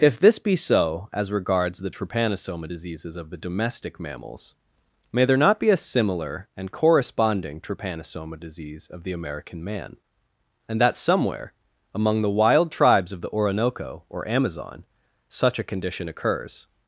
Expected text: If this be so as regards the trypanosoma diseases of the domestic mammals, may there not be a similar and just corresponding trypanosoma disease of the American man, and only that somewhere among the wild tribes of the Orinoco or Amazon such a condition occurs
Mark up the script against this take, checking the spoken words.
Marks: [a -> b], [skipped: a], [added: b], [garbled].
If this be so as regards the trypanosoma diseases of the domestic mammals, may there not be a similar and [skipped: just] corresponding trypanosoma disease of the American man, and [skipped: only] that somewhere among the wild tribes of the Orinoco or Amazon such a condition occurs